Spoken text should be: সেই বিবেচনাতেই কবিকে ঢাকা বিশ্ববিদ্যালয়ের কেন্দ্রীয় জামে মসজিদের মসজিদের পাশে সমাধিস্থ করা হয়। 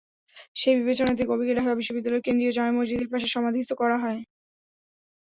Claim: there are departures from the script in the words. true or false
true